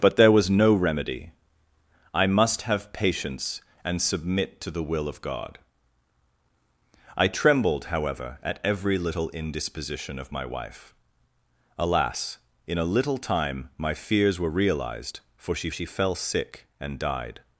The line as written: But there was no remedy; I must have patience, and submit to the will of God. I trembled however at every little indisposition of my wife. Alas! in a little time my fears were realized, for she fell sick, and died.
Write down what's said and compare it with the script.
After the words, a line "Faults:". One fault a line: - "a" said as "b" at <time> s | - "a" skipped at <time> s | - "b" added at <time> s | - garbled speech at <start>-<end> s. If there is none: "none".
But there was no remedy; I must have patience, and submit to the will of God. I trembled however at every little indisposition of my wife. Alas! in a little time my fears were realized, for she she fell sick, and died.
Faults:
- "she" added at 15.7 s